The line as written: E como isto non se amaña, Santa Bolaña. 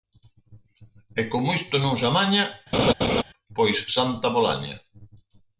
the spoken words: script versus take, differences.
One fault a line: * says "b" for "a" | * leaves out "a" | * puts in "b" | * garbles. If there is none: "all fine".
* puts in "pois"